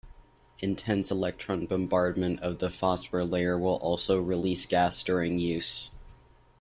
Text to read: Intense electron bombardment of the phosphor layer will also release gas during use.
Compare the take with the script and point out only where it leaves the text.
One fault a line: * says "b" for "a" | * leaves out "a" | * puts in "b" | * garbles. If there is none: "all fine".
all fine